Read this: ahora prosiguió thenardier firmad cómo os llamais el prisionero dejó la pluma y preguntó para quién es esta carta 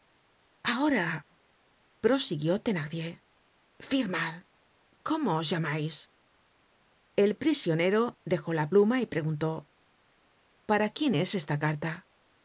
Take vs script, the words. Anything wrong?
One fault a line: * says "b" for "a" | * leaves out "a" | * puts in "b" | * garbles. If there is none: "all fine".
all fine